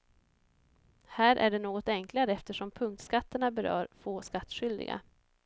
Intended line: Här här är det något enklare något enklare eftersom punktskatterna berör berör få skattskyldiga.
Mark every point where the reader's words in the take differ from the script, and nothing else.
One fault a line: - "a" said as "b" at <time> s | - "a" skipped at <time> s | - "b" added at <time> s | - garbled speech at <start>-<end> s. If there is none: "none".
- "här" skipped at 1.4 s
- "något enklare" skipped at 2.3 s
- "berör" skipped at 3.9 s